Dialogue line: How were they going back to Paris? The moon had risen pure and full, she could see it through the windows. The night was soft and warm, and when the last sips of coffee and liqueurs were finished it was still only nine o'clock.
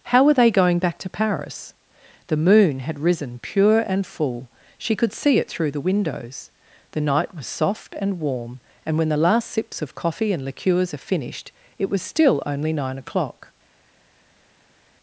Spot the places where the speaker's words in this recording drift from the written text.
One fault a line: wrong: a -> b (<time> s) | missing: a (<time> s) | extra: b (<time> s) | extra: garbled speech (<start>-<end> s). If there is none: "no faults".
wrong: were -> are (10.9 s)